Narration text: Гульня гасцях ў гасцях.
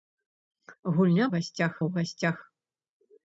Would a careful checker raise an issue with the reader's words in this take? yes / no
no